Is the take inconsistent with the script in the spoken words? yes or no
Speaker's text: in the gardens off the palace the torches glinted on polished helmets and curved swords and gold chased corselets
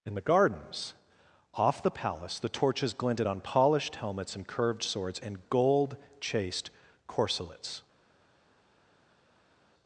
no